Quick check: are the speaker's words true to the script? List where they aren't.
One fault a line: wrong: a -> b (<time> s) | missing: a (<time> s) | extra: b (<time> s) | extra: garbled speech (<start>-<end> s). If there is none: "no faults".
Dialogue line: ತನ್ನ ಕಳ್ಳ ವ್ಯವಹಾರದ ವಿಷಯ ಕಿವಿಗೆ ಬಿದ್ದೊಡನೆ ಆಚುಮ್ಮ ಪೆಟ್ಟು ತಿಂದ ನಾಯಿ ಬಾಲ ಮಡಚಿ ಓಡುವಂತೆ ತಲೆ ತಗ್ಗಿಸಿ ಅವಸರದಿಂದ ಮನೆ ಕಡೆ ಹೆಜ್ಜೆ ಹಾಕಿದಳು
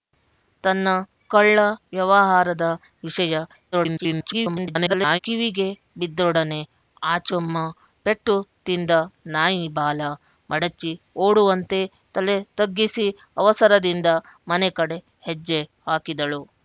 extra: garbled speech (3.7-5.2 s)